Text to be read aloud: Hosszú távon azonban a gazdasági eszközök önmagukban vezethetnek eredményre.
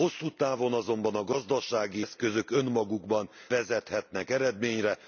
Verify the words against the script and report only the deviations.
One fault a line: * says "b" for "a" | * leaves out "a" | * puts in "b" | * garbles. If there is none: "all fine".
all fine